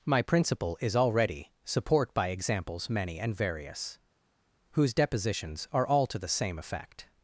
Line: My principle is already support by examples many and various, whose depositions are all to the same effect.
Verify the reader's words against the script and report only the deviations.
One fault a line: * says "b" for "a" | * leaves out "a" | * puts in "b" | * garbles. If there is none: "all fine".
all fine